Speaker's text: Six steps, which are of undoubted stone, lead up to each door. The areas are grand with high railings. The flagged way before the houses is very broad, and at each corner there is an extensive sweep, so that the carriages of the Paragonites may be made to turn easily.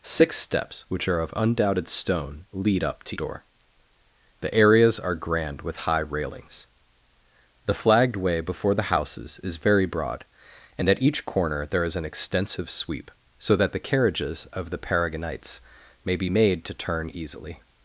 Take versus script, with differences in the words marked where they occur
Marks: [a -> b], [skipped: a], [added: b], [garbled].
Six steps, which are of undoubted stone, lead up to [skipped: each] door. The areas are grand with high railings. The flagged way before the houses is very broad, and at each corner there is an extensive sweep, so that the carriages of the Paragonites may be made to turn easily.